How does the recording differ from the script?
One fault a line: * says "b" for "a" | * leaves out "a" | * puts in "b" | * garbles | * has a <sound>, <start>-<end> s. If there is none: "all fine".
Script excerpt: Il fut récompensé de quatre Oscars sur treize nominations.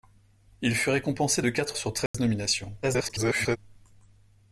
* leaves out "Oscars"
* has a dropout, 2.1-2.1 s
* garbles